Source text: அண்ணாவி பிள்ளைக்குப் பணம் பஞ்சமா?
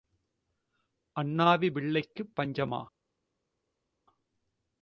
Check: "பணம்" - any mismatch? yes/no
yes